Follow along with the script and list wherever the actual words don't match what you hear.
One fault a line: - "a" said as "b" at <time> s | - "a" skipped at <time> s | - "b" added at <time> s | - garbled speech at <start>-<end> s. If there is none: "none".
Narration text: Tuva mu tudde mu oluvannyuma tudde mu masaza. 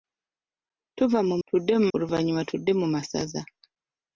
none